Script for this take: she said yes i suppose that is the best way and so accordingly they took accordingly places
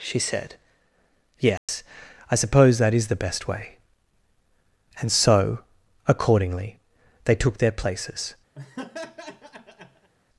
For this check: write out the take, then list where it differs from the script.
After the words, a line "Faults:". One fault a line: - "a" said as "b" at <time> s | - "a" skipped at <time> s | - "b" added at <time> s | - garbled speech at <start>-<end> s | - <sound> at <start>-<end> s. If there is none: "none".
she said yes i suppose that is the best way and so accordingly they took their places
Faults:
- dropout at 1.6-1.7 s
- "accordingly" said as "their" at 7.6 s
- laugh at 8.6-10.1 s